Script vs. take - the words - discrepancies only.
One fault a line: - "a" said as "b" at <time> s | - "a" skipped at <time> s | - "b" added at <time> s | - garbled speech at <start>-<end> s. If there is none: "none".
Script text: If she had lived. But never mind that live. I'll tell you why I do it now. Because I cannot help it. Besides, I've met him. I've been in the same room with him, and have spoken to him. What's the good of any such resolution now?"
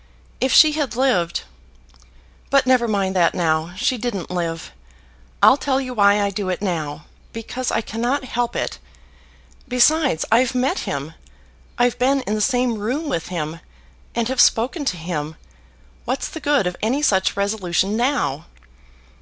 - "now She didn't" added at 3.3 s